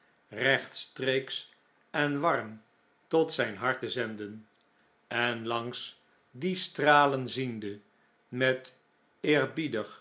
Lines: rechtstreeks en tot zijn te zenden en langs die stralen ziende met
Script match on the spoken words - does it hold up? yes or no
no